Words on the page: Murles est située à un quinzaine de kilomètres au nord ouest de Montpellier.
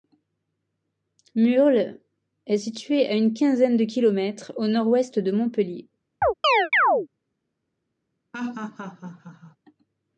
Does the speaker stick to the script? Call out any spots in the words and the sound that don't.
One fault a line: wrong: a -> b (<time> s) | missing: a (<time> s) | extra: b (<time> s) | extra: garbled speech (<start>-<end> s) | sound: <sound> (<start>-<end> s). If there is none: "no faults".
wrong: un -> une (3.1 s)
sound: chirp (6.2-7.1 s)
sound: laugh (8.3-9.6 s)